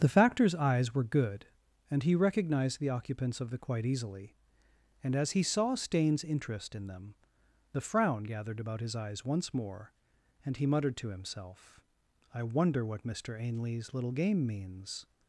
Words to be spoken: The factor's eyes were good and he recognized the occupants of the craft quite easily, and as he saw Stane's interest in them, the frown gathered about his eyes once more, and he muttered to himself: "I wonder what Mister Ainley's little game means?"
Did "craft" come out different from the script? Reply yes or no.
yes